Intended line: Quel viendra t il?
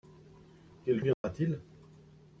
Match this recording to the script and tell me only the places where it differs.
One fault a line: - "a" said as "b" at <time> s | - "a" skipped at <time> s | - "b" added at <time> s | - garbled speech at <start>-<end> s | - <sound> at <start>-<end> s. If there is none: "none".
- dropout at 1.1-1.2 s